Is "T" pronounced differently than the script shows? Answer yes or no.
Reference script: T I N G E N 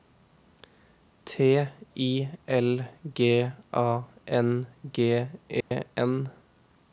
no